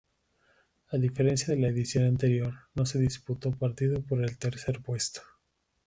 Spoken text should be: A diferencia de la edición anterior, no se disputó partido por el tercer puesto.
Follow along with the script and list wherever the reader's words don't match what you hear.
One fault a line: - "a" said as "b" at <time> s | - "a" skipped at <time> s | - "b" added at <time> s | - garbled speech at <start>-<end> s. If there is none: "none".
none